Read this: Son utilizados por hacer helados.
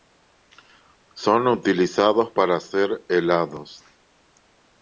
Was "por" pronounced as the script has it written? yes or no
no